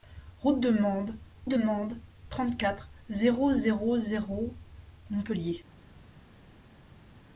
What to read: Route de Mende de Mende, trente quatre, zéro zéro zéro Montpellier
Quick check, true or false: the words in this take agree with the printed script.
true